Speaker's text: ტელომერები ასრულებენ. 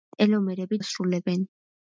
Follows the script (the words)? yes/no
yes